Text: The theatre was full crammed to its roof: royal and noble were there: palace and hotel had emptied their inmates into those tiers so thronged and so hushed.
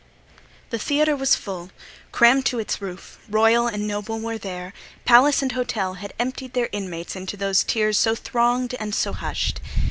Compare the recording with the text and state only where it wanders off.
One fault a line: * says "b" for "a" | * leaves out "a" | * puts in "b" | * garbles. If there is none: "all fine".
all fine